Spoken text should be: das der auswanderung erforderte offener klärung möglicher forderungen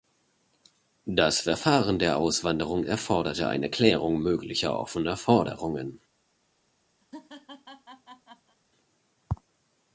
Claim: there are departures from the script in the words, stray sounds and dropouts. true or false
true